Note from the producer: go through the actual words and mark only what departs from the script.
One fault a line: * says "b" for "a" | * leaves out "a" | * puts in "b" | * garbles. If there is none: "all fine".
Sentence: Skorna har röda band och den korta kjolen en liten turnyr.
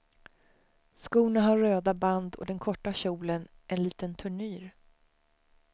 all fine